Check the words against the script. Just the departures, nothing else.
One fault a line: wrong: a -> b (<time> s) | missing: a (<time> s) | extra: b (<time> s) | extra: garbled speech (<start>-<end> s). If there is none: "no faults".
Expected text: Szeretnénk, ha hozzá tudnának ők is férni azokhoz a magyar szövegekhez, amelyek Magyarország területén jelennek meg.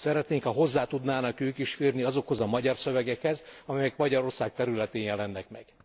no faults